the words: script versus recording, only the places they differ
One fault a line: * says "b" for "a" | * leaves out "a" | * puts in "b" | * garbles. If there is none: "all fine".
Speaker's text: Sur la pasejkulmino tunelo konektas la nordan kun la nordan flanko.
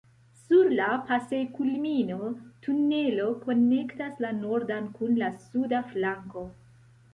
* says "suda" for "nordan"